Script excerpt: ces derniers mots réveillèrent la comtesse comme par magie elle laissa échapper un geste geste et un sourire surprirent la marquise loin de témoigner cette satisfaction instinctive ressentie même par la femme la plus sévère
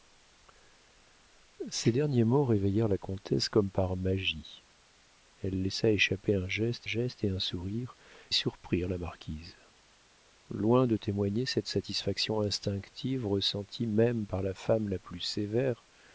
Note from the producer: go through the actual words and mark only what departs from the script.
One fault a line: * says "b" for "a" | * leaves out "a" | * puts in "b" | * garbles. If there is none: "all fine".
all fine